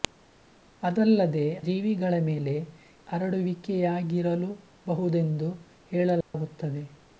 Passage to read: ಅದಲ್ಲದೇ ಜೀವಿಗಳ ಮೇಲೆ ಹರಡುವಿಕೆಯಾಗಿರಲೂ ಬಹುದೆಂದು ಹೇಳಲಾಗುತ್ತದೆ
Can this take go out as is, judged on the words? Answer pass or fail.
pass